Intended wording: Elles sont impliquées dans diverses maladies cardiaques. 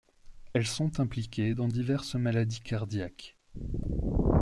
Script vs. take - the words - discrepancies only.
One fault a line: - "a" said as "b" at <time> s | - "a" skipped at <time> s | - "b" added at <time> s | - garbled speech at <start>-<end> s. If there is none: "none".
none